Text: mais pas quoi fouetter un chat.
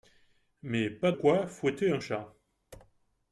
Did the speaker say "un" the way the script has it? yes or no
yes